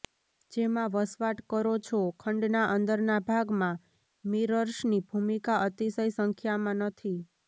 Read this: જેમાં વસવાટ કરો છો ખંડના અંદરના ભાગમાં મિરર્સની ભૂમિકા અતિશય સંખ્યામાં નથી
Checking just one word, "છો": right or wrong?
right